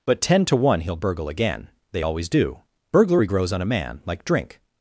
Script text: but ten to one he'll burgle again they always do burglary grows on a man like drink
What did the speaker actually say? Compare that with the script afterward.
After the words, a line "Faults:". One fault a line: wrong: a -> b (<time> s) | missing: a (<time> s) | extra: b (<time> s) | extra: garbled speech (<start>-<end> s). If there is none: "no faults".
but ten to one he'll burgle again they always do burglary grows on a man like drink
Faults:
no faults